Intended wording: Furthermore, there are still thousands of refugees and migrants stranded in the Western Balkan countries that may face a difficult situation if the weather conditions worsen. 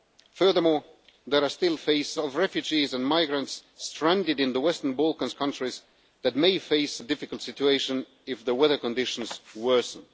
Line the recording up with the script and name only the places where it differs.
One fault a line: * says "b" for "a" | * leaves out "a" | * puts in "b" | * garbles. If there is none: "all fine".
* says "face" for "thousands"